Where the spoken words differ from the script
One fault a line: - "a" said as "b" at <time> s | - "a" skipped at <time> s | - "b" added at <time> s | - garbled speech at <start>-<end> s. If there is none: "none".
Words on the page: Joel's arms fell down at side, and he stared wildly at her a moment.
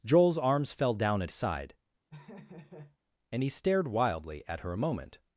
none